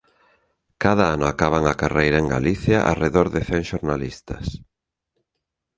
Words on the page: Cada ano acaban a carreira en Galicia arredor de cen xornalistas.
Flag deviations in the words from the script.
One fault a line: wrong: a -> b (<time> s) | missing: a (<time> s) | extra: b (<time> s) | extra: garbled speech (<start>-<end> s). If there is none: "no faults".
no faults